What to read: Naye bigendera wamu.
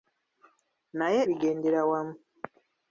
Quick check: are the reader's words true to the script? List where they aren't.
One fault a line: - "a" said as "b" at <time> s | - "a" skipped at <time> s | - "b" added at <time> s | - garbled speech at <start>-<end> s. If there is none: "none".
none